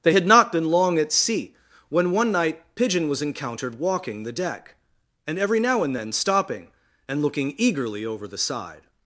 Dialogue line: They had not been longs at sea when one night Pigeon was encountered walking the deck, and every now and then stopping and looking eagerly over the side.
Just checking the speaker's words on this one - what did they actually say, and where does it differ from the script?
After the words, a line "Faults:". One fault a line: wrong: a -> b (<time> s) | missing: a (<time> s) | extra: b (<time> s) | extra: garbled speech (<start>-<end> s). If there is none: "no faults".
They had not been long at sea when one night Pigeon was encountered walking the deck, and every now and then stopping and looking eagerly over the side.
Faults:
wrong: longs -> long (0.7 s)